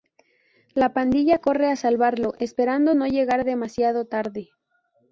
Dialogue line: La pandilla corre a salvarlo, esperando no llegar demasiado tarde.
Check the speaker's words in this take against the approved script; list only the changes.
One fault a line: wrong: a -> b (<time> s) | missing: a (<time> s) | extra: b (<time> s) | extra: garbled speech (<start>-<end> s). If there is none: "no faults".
no faults